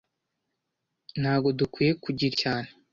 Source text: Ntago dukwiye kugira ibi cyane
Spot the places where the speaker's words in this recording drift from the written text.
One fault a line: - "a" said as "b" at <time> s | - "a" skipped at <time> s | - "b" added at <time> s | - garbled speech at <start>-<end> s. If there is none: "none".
- "ibi" skipped at 2.3 s